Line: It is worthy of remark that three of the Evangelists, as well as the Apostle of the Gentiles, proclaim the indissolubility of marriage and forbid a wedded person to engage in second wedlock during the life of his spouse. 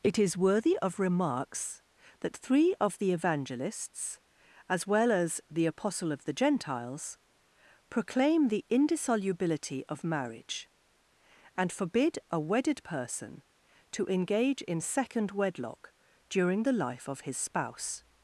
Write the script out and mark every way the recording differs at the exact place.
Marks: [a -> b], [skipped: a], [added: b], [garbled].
It is worthy of [remark -> remarks] that three of the Evangelists, as well as the Apostle of the Gentiles, proclaim the indissolubility of marriage and forbid a wedded person to engage in second wedlock during the life of his spouse.